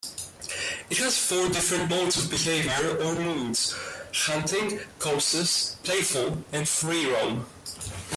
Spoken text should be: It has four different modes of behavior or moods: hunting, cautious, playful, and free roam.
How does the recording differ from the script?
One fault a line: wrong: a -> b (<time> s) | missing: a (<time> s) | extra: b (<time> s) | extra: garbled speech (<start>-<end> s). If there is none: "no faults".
no faults